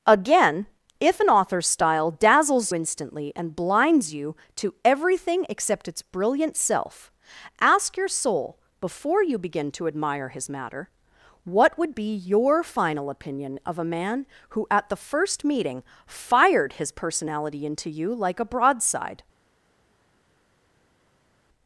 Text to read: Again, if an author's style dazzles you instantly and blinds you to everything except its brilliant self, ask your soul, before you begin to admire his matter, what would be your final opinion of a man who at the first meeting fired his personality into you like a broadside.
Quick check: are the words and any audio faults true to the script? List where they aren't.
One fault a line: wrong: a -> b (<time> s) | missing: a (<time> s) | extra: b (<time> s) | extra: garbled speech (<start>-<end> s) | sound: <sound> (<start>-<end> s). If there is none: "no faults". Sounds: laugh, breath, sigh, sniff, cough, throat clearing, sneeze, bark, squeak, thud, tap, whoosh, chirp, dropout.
missing: you (2.7 s)